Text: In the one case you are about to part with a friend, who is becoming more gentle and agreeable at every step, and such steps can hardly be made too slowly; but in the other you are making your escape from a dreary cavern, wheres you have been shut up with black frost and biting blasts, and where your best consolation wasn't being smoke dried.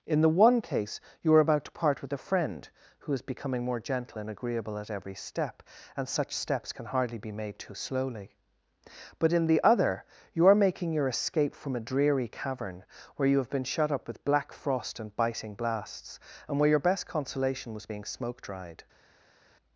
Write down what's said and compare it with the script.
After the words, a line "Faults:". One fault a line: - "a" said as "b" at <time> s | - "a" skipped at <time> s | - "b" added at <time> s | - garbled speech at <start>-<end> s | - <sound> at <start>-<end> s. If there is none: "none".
In the one case you are about to part with a friend, who is becoming more gentle and agreeable at every step, and such steps can hardly be made too slowly; but in the other you are making your escape from a dreary cavern, where you have been shut up with black frost and biting blasts, and where your best consolation was being smoke dried.
Faults:
- "wheres" said as "where" at 13.1 s
- "wasn't" said as "was" at 17.7 s